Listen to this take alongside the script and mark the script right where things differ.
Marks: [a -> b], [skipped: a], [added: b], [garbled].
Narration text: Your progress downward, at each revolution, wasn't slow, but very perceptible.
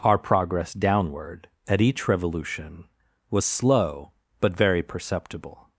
[Your -> Our] progress downward, at each revolution, [wasn't -> was] slow, but very perceptible.